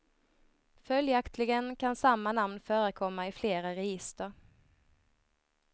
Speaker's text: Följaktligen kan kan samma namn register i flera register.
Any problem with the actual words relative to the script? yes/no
yes